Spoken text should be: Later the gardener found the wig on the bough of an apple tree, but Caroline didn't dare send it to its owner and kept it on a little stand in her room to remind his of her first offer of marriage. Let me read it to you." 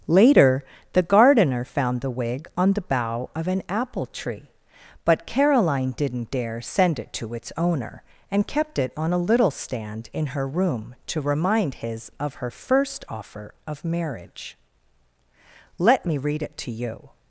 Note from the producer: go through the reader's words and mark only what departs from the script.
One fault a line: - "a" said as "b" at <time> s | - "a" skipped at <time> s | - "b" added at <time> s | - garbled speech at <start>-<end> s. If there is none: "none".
none